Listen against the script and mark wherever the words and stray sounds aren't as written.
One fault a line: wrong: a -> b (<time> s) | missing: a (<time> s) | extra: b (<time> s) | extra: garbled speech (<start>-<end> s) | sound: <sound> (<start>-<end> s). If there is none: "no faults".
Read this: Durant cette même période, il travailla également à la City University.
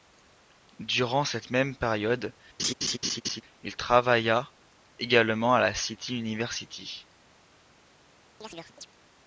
sound: laugh (2.6-3.4 s)
sound: chirp (8.4-8.9 s)